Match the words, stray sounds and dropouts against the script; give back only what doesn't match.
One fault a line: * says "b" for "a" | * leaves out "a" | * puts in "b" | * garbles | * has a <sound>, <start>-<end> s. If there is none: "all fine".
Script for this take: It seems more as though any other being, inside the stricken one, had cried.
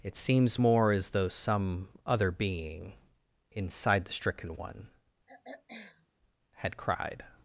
* says "some" for "any"
* has a throat clearing, 5.3-6.1 s